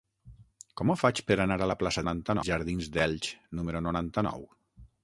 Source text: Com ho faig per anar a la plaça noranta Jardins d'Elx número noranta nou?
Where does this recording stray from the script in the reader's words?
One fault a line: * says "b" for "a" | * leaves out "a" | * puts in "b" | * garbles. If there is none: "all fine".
all fine